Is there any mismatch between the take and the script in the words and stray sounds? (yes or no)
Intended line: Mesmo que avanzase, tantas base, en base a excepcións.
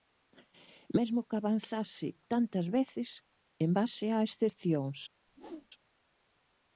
yes